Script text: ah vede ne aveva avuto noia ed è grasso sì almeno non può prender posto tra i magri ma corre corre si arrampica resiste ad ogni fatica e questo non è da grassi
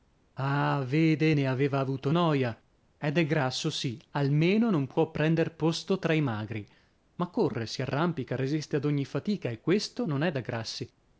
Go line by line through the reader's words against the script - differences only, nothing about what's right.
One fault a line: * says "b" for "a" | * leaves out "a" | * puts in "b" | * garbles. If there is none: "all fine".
* leaves out "corre"